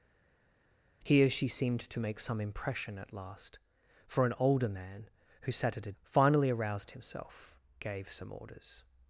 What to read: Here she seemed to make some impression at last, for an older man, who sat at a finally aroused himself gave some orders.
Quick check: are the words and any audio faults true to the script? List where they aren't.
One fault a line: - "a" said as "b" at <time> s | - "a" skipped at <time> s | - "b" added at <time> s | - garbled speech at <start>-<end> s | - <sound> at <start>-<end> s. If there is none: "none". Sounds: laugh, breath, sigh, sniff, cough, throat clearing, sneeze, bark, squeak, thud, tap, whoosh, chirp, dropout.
none